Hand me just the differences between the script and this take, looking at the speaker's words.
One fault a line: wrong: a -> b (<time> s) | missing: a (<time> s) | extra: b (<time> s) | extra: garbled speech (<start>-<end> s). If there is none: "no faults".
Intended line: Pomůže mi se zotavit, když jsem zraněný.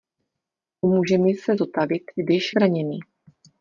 missing: jsem (2.5 s)